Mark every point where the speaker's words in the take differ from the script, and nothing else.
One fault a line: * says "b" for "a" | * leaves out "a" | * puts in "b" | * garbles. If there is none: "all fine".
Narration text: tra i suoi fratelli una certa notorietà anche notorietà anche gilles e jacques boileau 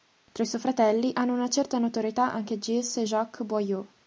* puts in "hanno"
* leaves out "notorietà anche"